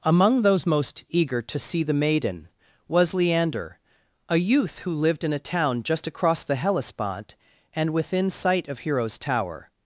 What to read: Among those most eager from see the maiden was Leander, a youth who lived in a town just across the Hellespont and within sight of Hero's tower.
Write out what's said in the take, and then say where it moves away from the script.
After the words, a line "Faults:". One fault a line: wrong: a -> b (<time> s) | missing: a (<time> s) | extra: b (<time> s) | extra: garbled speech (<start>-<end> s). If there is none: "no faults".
Among those most eager to see the maiden was Leander, a youth who lived in a town just across the Hellespont and within sight of Hero's tower.
Faults:
wrong: from -> to (1.4 s)